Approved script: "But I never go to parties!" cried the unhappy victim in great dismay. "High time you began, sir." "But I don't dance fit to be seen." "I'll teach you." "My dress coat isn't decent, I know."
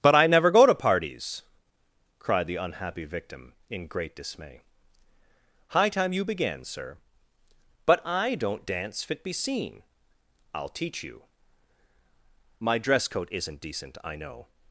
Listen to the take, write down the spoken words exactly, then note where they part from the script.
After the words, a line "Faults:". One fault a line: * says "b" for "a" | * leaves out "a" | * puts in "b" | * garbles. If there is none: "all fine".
"But I never go to parties!" cried the unhappy victim in great dismay. "High time you began, sir." "But I don't dance fit be seen." "I'll teach you." "My dress coat isn't decent, I know."
Faults:
* leaves out "to"